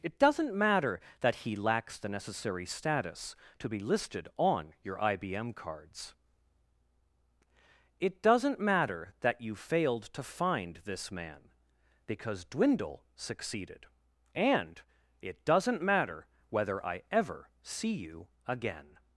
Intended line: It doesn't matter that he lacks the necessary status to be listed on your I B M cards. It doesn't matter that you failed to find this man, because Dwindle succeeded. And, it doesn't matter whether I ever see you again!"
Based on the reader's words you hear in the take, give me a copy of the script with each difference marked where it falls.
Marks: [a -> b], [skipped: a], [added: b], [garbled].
It doesn't matter that he lacks the necessary status to be listed on your I B M cards. It doesn't matter that you failed to find this man, because Dwindle succeeded. And, it doesn't matter whether I ever see you again!"